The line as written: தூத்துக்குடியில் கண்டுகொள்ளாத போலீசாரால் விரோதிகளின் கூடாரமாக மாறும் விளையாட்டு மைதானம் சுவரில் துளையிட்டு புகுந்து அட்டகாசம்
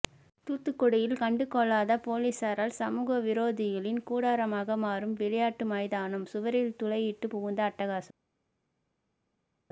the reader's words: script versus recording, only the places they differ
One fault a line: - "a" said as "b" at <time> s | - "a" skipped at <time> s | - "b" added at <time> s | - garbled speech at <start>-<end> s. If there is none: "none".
- "சமூக" added at 2.8 s